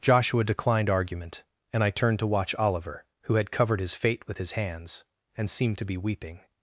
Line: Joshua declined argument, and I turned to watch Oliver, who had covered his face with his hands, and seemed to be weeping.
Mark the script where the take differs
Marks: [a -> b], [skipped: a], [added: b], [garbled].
Joshua declined argument, and I turned to watch Oliver, who had covered his [face -> fate] with his hands, and seemed to be weeping.